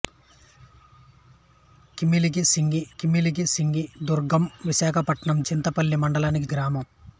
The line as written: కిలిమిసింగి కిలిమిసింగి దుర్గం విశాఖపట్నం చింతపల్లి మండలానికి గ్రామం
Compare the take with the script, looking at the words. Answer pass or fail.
pass